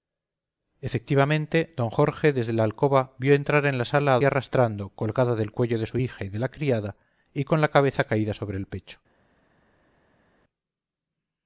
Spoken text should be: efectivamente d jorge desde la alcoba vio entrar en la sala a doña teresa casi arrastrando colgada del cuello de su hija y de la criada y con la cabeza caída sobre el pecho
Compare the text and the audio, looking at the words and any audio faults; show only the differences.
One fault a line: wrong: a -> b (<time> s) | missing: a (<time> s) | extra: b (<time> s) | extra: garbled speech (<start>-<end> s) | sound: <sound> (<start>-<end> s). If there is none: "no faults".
missing: doña teresa casi (4.2 s)